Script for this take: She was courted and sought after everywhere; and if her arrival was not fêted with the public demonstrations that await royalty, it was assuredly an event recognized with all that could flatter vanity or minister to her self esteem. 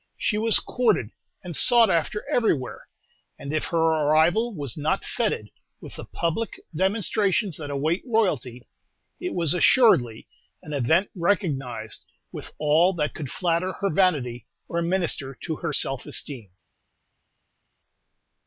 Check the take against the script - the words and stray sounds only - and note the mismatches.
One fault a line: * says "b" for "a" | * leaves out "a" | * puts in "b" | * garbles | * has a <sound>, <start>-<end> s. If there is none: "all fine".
* puts in "her"